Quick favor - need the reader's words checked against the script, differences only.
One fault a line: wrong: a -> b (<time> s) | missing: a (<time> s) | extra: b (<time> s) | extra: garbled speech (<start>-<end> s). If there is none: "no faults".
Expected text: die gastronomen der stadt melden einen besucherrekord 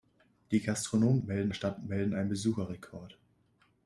wrong: der -> melden (1.2 s)